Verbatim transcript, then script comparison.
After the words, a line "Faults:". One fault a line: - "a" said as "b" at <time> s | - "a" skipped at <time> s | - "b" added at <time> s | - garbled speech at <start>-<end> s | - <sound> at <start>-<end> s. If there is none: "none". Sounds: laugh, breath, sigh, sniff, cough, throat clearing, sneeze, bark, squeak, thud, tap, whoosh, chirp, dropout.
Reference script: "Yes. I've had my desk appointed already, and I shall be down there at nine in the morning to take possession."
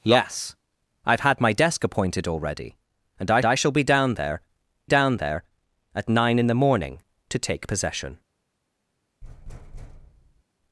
"Yes. I've had my desk appointed already, and I I shall be down there down there at nine in the morning to take possession."
Faults:
- "I" added at 3.4 s
- "down there" added at 4.9 s
- thud at 9.2-10.4 s